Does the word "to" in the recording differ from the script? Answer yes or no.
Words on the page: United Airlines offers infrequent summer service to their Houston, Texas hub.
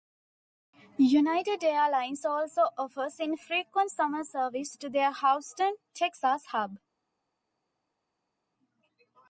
no